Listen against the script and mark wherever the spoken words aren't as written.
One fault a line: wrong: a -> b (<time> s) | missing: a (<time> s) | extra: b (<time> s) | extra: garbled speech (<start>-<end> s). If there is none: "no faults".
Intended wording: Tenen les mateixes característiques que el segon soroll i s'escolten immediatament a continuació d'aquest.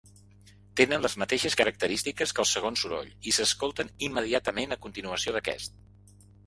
no faults